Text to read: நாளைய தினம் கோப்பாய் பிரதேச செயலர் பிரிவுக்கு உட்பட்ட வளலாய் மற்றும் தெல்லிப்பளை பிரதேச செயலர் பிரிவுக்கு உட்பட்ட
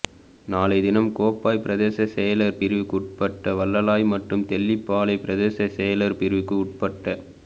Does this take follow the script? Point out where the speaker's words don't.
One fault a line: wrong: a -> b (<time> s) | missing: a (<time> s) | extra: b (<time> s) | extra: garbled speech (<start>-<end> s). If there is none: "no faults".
no faults